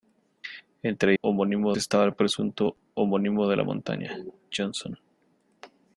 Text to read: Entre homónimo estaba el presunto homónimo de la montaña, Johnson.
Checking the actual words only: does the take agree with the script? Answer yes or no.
yes